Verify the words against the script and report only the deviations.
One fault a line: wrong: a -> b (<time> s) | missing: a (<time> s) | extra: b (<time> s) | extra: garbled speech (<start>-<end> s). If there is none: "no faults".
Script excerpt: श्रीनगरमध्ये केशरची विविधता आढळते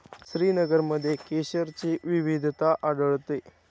no faults